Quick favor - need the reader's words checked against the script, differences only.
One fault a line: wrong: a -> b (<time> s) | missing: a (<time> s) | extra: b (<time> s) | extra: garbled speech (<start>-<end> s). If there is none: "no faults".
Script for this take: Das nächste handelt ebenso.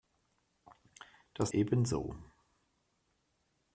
missing: nächste handelt (1.5 s)